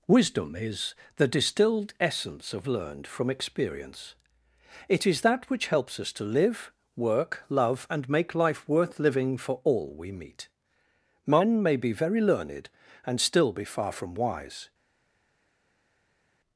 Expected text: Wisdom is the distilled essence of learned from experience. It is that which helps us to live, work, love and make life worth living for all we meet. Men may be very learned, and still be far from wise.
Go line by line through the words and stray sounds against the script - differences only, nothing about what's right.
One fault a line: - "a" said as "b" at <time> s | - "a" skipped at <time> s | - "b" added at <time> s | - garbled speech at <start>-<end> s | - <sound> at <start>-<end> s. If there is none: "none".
none